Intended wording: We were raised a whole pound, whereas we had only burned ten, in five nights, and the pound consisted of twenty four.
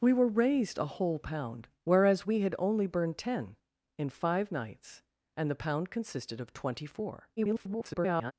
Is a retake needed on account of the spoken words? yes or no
yes